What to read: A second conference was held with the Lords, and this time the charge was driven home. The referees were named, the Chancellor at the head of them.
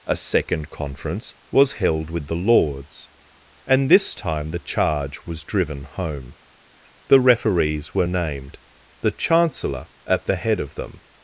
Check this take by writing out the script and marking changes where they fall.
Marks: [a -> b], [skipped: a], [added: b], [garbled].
A second conference was held with the Lords, and this time the charge was driven home. The referees were named, the Chancellor at the head of them.